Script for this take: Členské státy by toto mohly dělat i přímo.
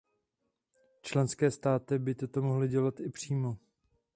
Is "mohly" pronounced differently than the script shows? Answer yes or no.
no